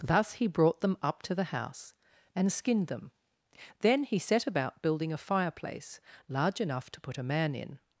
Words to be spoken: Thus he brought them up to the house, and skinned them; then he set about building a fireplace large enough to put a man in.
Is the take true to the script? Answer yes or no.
yes